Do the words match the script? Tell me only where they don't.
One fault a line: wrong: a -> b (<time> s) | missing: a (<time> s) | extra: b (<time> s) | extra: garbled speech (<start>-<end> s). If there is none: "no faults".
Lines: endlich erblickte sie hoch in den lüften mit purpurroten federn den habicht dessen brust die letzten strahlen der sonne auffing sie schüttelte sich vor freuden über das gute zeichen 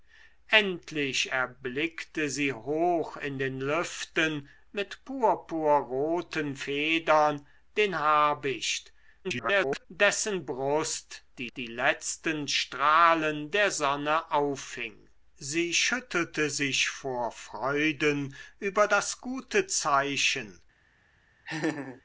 extra: garbled speech (9.2-9.9 s)
extra: die (11.6 s)